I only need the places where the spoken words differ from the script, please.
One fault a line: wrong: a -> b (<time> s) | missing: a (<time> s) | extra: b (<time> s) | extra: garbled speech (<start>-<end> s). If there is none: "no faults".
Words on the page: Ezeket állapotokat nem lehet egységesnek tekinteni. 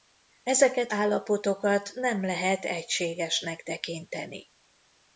no faults